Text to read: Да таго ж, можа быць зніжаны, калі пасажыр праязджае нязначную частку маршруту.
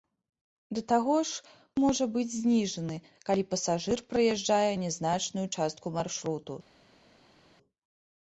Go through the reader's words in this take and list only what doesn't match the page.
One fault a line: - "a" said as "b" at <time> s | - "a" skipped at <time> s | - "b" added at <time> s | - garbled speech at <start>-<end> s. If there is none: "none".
none